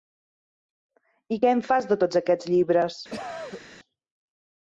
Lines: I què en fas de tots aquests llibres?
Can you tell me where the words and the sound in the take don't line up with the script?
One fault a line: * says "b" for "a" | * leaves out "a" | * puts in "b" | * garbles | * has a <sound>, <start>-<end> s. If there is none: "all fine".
* has a cough, 3.1-3.6 s